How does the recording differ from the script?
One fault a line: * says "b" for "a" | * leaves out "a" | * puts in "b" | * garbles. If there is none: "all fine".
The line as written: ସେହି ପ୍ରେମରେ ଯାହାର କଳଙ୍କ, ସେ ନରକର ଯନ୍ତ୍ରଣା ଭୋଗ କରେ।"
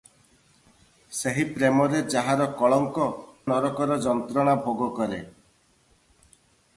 * leaves out "ସେ"